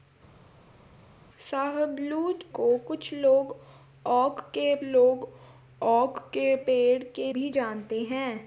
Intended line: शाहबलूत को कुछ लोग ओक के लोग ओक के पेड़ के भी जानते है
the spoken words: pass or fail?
pass